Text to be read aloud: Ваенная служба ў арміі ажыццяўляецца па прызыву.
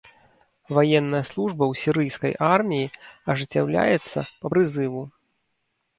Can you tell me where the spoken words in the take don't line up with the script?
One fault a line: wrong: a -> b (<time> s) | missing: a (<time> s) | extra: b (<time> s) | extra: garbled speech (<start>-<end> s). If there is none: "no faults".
extra: сірыйскай (1.8 s)